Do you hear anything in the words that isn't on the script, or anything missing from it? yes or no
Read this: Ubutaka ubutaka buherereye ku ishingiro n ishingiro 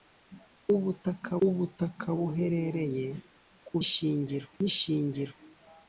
no